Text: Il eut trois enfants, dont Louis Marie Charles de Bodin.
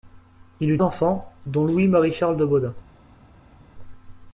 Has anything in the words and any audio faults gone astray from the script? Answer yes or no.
yes